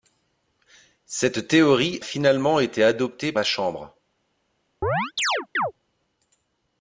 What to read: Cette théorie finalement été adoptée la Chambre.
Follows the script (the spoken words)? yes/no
yes